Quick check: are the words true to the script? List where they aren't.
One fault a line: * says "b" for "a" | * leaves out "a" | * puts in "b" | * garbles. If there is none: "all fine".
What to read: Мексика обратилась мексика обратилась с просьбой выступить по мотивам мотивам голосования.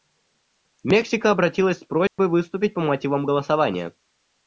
* leaves out "мексика обратилась"
* leaves out "мотивам"